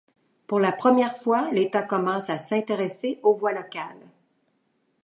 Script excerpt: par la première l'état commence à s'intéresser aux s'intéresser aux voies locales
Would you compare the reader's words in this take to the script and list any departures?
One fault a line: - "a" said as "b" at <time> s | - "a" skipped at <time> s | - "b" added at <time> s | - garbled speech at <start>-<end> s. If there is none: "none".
- "par" said as "pour" at 0.5 s
- "fois" added at 1.1 s
- "s'intéresser aux" skipped at 3.4 s